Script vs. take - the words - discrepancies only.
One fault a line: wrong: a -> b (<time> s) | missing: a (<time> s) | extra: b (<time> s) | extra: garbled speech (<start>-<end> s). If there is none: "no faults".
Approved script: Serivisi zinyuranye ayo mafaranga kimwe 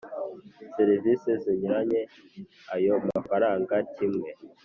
no faults